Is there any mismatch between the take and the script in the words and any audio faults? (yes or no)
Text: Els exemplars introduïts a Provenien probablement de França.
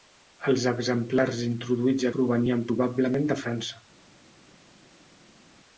no